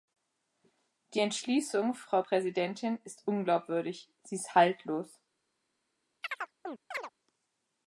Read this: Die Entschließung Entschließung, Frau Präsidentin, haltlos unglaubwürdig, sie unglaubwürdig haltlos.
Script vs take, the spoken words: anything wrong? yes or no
yes